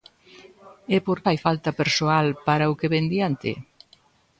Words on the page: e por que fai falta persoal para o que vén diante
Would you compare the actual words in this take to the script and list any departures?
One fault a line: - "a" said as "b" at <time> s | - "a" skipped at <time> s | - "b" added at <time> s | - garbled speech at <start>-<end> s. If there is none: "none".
- "que" skipped at 1.2 s